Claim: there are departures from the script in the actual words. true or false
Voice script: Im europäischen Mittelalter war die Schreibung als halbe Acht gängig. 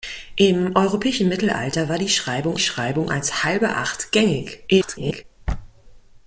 true